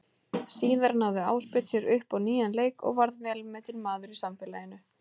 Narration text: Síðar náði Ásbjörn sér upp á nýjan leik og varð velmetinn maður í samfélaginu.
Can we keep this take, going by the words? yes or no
yes